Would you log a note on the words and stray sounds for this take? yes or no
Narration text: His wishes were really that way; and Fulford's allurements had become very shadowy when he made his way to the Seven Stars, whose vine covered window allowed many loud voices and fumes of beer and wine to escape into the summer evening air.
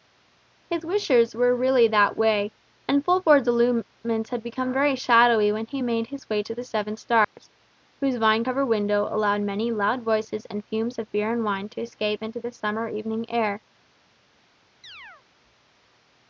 yes